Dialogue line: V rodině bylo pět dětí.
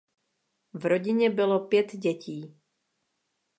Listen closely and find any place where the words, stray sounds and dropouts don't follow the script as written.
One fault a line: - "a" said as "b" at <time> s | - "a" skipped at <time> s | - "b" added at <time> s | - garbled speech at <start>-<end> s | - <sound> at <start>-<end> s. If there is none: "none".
none